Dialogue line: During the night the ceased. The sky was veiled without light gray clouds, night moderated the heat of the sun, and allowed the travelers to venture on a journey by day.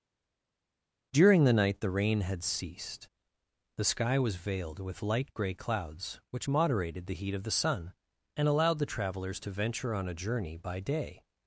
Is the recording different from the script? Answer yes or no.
yes